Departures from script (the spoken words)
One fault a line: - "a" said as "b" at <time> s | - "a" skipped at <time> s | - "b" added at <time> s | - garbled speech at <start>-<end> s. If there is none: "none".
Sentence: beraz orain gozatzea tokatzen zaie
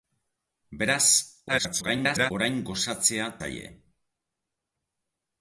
- garbled speech at 1.5-2.3 s
- "tokatzen" skipped at 3.3 s